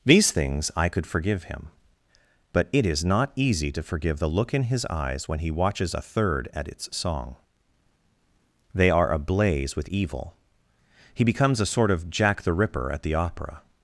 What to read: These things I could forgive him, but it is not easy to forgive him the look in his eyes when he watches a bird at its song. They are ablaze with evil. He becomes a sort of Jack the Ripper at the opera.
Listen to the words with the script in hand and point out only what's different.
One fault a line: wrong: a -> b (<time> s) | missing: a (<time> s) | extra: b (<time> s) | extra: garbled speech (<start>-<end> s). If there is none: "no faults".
missing: him (4.2 s)
wrong: bird -> third (6.0 s)